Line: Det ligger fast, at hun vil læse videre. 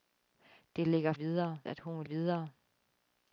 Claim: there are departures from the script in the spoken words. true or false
true